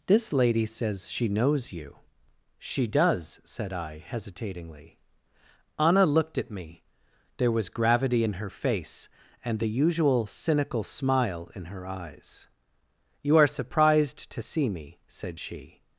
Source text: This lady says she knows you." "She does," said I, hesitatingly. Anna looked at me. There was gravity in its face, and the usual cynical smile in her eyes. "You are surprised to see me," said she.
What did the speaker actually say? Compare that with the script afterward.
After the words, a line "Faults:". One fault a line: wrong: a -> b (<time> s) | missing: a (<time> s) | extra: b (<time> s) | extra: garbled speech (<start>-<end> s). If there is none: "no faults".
This lady says she knows you." "She does," said I, hesitatingly. Anna looked at me. There was gravity in her face, and the usual cynical smile in her eyes. "You are surprised to see me," said she.
Faults:
wrong: its -> her (8.3 s)